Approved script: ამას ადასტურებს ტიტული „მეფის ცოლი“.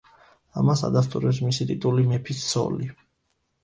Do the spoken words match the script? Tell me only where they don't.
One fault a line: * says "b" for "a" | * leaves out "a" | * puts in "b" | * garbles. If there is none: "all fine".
* puts in "მისი"